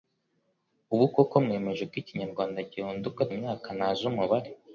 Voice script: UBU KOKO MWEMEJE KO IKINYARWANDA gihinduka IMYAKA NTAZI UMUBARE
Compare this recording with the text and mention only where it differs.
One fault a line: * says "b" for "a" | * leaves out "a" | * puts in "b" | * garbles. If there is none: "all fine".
all fine